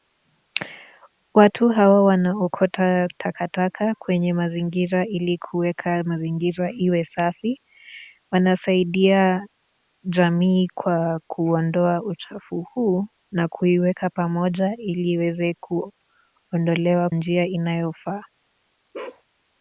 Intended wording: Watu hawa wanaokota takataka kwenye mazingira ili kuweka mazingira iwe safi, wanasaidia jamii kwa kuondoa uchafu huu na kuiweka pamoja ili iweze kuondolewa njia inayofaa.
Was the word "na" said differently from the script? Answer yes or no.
no